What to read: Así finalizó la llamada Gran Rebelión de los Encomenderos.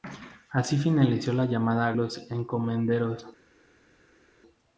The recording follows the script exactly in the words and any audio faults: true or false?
false